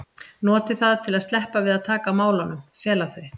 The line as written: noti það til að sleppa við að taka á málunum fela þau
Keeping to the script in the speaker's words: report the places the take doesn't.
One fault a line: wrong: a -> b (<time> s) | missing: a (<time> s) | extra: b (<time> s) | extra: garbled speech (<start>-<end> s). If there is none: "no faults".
no faults